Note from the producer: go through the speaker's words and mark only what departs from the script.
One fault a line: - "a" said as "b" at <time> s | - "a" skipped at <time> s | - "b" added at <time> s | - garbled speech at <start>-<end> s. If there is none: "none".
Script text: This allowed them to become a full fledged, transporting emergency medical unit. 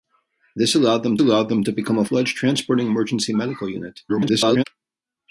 - "allowed them" added at 1.2 s
- "full" skipped at 2.1 s
- garbled speech at 4.1-4.6 s